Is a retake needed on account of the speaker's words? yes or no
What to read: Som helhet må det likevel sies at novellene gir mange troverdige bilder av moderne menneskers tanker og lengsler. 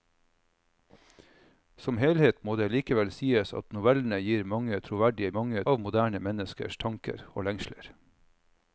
yes